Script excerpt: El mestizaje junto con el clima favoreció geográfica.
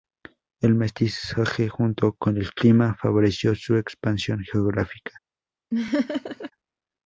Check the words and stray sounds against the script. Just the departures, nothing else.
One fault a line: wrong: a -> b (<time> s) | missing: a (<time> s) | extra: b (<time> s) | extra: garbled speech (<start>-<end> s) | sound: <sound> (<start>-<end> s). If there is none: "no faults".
extra: su expansión (3.5 s)
sound: laugh (5.7-6.5 s)